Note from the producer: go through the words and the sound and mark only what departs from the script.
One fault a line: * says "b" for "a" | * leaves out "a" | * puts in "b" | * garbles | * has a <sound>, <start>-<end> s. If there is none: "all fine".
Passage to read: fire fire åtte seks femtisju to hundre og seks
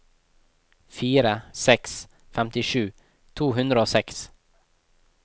* leaves out "fire åtte"